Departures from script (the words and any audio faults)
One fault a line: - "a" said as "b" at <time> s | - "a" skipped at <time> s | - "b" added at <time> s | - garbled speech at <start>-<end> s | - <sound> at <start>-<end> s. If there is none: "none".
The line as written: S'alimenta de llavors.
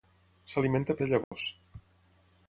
- dropout at 1.2-1.3 s